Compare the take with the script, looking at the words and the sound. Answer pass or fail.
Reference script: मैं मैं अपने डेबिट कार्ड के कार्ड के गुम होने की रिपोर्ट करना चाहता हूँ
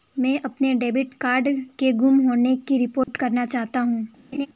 fail